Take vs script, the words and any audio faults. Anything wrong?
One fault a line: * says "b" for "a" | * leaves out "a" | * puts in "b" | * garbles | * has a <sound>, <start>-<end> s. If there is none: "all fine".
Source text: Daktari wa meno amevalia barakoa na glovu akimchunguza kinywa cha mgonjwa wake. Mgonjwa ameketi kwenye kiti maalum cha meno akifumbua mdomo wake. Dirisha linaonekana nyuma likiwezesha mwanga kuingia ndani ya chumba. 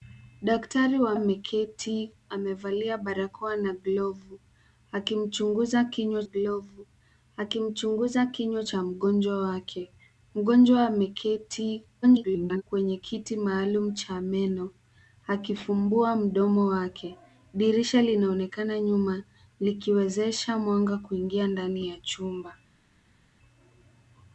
* says "ameketi" for "meno"
* puts in "glovu akimchunguza kinywa"
* garbles